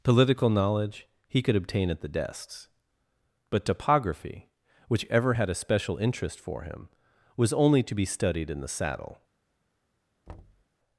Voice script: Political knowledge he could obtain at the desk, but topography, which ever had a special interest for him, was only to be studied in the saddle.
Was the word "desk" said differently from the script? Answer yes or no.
yes